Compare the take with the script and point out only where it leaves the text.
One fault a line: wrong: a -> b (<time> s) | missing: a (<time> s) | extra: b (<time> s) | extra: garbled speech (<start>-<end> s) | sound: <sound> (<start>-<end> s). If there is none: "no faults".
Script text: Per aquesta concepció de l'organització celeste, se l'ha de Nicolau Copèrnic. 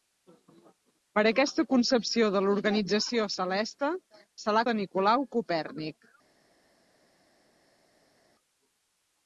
no faults